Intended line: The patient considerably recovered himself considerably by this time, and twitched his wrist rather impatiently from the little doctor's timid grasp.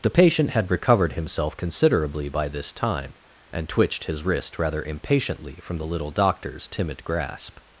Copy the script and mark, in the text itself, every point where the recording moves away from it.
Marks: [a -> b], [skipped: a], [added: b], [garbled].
The patient [considerably -> had] recovered himself considerably by this time, and twitched his wrist rather impatiently from the little doctor's timid grasp.